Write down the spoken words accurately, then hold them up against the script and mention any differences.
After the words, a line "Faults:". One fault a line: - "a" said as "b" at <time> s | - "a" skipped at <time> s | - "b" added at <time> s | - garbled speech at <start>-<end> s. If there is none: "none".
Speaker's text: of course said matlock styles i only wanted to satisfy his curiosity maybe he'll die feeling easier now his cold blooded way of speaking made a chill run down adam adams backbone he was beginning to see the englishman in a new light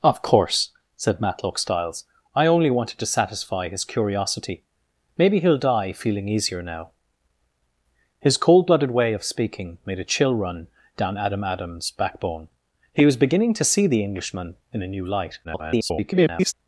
of course said matlock styles i only wanted to satisfy his curiosity maybe he'll die feeling easier now his cold blooded way of speaking made a chill run down adam adams backbone he was beginning to see the englishman in a new light [garbled]
Faults:
- garbled speech at 15.4-16.5 s